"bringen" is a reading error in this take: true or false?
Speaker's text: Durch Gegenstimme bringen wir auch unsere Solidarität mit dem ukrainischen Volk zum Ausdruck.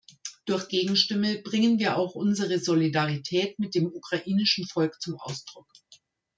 false